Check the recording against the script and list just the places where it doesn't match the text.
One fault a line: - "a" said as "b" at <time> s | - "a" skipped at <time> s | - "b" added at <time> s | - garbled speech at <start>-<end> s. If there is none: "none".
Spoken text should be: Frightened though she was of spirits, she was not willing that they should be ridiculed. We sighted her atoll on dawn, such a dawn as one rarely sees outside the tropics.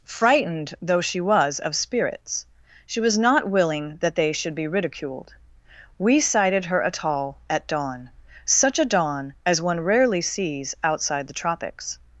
- "on" said as "at" at 7.5 s